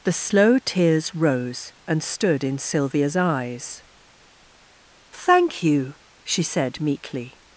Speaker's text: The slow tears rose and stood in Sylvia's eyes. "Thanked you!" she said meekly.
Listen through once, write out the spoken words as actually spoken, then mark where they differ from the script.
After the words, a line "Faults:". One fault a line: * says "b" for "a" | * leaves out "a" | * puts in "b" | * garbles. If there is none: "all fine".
The slow tears rose and stood in Sylvia's eyes. "Thank you!" she said meekly.
Faults:
* says "Thank" for "Thanked"